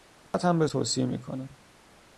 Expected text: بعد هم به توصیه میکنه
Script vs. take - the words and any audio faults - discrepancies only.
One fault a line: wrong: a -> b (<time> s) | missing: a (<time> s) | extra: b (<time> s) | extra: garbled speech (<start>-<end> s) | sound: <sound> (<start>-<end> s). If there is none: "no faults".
sound: dropout (0.3-0.3 s)